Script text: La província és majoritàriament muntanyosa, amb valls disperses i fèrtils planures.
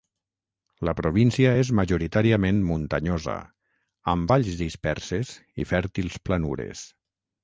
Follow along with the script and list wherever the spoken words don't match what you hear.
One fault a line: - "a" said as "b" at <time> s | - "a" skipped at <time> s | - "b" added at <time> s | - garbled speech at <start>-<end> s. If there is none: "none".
none